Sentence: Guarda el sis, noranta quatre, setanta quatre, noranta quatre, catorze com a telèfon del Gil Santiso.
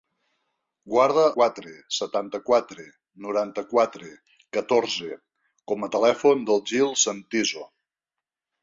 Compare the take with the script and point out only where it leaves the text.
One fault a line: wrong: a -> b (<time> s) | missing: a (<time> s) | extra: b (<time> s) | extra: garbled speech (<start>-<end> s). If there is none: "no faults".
missing: el sis noranta (1.2 s)